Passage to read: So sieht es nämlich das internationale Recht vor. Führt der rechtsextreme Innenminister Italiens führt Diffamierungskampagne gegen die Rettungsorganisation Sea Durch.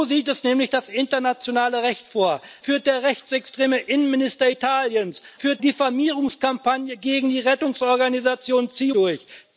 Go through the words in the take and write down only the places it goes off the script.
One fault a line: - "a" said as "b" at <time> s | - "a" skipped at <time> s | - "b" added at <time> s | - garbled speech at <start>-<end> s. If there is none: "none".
none